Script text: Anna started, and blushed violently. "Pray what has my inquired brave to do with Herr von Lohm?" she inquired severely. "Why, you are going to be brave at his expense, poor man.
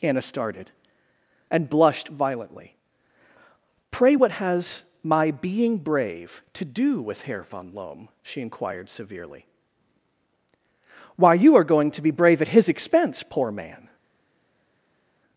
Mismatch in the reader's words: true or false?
true